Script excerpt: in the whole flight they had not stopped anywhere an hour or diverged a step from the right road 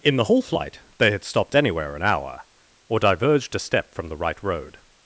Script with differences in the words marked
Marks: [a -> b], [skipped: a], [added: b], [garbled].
in the whole flight they had [skipped: not] stopped anywhere an hour or diverged a step from the right road